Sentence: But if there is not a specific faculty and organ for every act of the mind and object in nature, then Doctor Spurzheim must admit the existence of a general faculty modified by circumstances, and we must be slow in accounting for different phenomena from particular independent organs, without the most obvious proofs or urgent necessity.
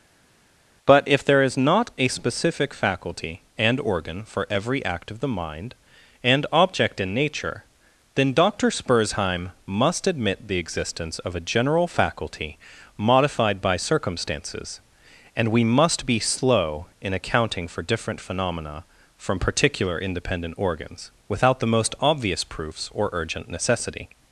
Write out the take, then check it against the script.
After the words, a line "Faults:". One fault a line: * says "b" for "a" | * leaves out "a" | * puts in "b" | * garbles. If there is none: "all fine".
But if there is not a specific faculty and organ for every act of the mind and object in nature, then Doctor Spurzheim must admit the existence of a general faculty modified by circumstances, and we must be slow in accounting for different phenomena from particular independent organs, without the most obvious proofs or urgent necessity.
Faults:
all fine